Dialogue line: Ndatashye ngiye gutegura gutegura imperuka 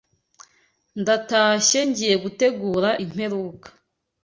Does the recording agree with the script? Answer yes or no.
no